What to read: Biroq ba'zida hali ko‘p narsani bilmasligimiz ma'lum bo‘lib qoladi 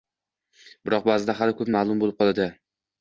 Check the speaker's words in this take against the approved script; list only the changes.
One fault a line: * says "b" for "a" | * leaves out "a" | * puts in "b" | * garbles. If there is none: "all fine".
* leaves out "narsani bilmasligimiz"